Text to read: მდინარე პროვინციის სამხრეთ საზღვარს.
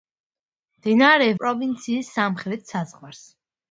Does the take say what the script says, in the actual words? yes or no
yes